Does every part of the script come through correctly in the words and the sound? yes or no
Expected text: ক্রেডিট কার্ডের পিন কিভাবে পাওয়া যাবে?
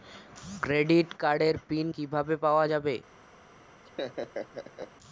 no